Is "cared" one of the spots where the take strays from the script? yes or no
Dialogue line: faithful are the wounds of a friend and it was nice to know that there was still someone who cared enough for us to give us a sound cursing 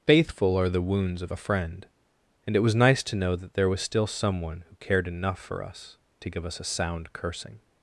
no